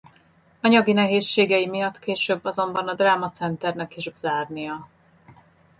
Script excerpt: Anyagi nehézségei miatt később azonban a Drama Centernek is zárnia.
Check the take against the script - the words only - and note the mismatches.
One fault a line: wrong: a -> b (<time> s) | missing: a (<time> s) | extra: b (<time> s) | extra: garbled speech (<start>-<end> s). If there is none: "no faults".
no faults